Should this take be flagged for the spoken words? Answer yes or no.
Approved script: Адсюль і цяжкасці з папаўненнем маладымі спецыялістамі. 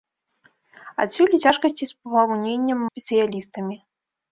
yes